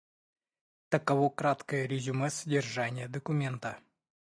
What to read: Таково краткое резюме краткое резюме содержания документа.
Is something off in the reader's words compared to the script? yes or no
yes